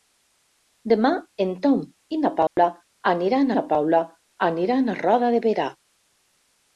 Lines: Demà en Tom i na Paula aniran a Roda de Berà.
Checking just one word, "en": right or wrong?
right